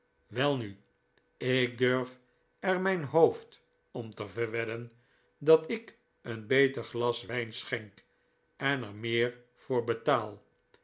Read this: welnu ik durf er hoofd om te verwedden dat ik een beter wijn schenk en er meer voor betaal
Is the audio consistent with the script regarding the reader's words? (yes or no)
no